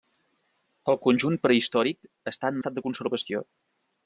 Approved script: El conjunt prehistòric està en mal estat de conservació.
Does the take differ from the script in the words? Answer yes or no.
yes